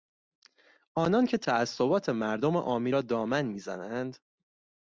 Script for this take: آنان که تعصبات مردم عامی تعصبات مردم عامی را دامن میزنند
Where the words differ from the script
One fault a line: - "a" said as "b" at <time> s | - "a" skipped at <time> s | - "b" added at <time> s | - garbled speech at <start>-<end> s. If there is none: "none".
- "تعصبات مردم عامی" skipped at 2.9 s